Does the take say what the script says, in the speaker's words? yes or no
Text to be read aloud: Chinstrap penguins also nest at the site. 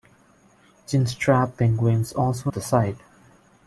no